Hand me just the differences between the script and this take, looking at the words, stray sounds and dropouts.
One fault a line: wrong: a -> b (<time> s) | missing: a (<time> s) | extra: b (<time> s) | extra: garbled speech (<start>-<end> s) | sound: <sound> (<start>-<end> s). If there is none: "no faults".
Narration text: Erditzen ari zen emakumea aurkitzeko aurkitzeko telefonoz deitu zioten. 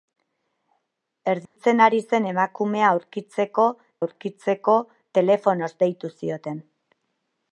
sound: dropout (1.5-1.6 s)